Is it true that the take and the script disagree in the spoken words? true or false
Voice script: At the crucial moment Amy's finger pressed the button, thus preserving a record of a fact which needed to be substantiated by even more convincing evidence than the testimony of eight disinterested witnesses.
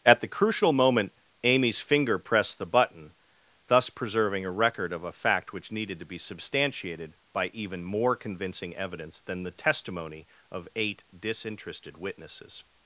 false